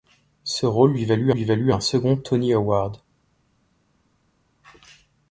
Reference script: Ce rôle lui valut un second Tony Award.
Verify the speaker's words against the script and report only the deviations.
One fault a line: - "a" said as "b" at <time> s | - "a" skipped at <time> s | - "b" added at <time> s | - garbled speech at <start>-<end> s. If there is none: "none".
- "lui valut" added at 1.3 s